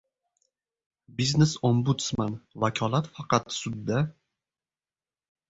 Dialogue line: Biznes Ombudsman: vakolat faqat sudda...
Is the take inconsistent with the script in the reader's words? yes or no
no